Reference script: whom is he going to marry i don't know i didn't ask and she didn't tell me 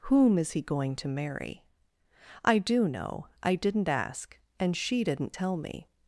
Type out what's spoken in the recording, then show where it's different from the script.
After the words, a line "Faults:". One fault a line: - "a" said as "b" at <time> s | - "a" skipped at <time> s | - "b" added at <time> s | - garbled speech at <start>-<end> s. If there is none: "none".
whom is he going to marry i do know i didn't ask and she didn't tell me
Faults:
- "don't" said as "do" at 2.6 s